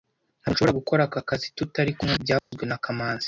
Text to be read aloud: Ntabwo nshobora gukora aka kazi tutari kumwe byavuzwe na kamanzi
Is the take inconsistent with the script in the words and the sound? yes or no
yes